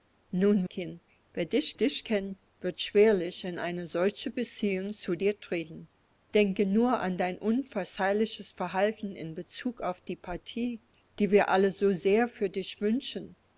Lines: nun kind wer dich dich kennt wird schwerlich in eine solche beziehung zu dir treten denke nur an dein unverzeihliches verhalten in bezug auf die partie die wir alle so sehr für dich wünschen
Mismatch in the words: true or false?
false